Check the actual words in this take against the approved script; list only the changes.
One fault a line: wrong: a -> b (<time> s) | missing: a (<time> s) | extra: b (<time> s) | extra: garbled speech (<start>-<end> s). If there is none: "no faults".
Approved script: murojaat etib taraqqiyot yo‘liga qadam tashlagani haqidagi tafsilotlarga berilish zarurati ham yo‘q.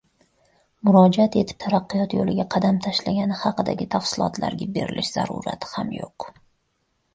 no faults